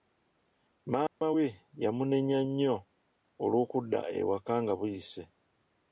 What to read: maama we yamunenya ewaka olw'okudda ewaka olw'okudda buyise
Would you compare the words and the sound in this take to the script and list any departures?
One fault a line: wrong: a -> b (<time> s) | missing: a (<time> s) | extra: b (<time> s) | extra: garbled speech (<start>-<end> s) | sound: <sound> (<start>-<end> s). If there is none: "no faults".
sound: dropout (1.1-1.2 s)
wrong: ewaka -> nnyo (2.5 s)
wrong: olw'okudda -> nga (4.6 s)